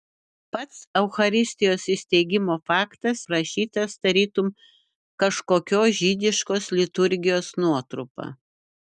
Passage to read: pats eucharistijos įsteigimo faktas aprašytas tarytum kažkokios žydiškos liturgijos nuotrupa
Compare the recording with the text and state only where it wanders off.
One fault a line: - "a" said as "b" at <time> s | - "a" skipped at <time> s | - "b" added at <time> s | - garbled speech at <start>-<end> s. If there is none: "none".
none